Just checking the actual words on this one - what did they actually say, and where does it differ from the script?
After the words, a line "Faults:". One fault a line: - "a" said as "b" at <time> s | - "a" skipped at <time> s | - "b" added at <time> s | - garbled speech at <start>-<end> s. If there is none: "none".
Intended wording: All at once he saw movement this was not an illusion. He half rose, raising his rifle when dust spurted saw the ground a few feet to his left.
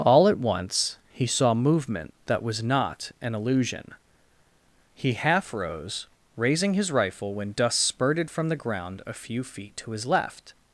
All at once he saw movement that was not an illusion. He half rose, raising his rifle when dust spurted from the ground a few feet to his left.
Faults:
- "this" said as "that" at 2.2 s
- "saw" said as "from" at 8.3 s